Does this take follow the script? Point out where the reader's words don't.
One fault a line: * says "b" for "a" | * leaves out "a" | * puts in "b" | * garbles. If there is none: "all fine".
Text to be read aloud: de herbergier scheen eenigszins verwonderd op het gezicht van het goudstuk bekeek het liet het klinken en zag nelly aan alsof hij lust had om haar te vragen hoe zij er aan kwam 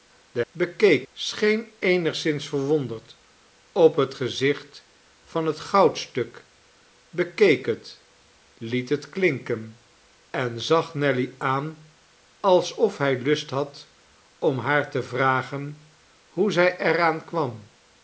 * says "bekeek" for "herbergier"